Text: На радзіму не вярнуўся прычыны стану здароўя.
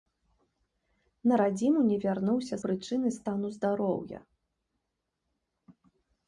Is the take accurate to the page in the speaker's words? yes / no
yes